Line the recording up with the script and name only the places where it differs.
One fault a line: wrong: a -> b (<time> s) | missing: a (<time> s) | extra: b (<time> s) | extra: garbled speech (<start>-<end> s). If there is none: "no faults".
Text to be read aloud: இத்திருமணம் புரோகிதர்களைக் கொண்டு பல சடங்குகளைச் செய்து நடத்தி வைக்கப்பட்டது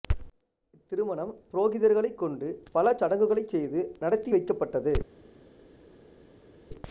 no faults